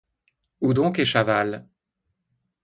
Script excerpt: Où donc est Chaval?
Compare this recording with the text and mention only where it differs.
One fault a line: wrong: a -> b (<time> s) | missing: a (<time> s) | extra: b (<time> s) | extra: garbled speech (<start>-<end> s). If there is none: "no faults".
no faults